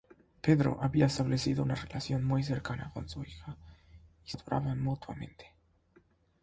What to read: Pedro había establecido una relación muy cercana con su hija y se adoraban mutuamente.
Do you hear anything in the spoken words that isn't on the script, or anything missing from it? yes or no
yes